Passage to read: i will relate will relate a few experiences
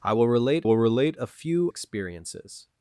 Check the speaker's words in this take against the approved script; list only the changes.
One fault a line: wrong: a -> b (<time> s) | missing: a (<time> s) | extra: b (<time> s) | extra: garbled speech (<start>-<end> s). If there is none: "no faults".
no faults